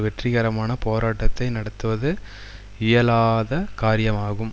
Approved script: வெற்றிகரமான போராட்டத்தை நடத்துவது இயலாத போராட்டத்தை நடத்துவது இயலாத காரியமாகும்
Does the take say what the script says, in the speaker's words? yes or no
no